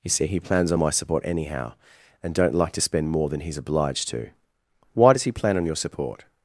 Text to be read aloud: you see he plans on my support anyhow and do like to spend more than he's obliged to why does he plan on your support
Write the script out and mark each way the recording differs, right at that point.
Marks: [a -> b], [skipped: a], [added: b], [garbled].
you see he plans on my support anyhow and [do -> don't] like to spend more than he's obliged to why does he plan on your support